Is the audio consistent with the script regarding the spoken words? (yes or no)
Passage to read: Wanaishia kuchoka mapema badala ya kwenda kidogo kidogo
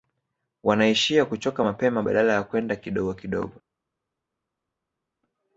yes